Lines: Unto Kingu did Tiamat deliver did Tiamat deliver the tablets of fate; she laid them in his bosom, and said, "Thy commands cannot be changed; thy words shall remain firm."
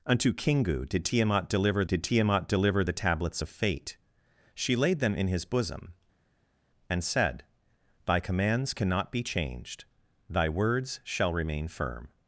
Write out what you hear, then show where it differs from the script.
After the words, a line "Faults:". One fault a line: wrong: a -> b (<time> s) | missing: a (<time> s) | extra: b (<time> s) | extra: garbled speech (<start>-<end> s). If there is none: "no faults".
Unto Kingu did Tiamat deliver did Tiamat deliver the tablets of fate; she laid them in his bosom, and said, "Thy commands cannot be changed; thy words shall remain firm."
Faults:
no faults